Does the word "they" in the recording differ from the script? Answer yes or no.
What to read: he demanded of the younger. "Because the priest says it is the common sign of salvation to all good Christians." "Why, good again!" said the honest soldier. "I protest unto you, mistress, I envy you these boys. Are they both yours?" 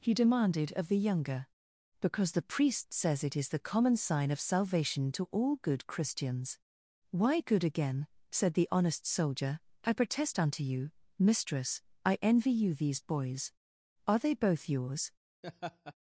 no